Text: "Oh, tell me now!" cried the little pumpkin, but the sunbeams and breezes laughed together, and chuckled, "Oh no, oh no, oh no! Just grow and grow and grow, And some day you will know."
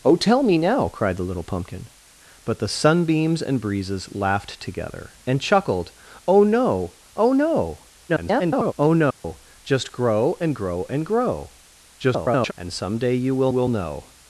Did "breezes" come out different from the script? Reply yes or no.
no